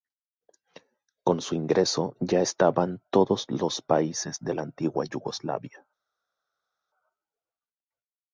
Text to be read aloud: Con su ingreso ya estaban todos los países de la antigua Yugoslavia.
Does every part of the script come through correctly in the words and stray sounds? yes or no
yes